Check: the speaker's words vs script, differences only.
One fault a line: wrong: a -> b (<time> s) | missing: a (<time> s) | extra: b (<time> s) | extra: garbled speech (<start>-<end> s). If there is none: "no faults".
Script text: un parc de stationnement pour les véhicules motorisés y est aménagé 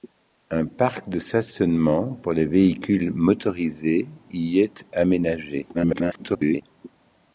extra: garbled speech (5.7-6.6 s)